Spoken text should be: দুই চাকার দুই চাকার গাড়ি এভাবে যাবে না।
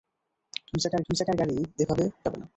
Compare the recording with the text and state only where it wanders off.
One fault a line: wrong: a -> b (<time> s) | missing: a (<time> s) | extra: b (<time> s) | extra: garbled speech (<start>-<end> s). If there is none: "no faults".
no faults